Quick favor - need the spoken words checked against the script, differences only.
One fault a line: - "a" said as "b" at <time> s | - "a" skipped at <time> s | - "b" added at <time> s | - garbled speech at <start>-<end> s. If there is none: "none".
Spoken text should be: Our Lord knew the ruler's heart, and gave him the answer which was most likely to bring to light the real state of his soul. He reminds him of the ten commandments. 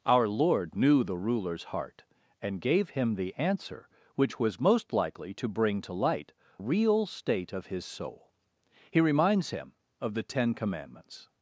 - "the" skipped at 6.3 s